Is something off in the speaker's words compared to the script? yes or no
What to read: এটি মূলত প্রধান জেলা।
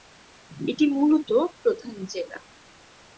no